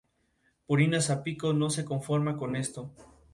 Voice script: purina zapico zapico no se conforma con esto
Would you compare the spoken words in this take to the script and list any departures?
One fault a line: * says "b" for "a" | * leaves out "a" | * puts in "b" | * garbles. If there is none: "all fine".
* leaves out "zapico"